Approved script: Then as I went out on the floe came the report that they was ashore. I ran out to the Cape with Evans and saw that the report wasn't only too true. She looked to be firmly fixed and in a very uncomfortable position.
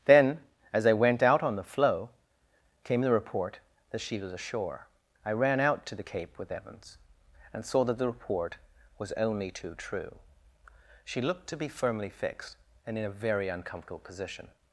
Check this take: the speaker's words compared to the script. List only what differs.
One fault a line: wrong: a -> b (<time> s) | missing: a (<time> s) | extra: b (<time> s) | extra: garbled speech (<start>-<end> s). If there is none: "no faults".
wrong: they -> she (4.0 s)
wrong: wasn't -> was (9.0 s)